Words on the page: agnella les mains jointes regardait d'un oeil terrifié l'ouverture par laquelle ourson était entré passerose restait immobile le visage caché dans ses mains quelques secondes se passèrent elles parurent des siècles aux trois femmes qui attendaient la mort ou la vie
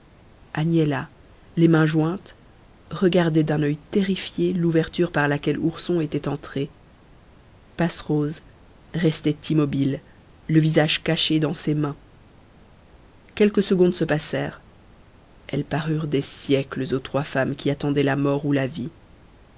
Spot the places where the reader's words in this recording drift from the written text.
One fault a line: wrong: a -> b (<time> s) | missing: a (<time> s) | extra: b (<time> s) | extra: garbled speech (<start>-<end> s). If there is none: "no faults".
no faults